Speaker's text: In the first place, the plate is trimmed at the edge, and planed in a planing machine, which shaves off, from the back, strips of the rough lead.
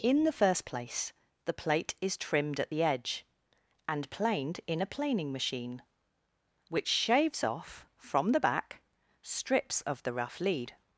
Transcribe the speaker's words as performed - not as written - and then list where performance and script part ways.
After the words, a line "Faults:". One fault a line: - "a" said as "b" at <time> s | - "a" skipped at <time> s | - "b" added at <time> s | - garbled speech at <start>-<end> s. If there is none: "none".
In the first place, the plate is trimmed at the edge, and planed in a planing machine, which shaves off, from the back, strips of the rough lead.
Faults:
none